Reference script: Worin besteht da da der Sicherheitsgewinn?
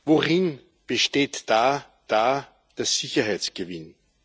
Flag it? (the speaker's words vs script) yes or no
no